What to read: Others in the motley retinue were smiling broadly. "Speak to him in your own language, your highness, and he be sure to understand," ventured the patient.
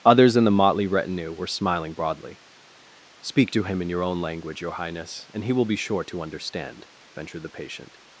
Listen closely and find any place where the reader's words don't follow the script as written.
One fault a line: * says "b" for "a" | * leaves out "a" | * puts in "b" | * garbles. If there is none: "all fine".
* puts in "will"